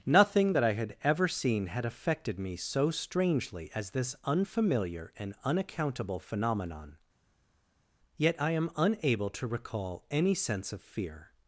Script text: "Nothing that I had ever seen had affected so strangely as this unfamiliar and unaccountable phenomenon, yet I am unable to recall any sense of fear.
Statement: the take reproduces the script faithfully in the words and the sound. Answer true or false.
false